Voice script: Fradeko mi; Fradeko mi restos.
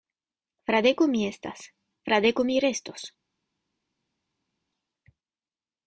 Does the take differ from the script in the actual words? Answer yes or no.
yes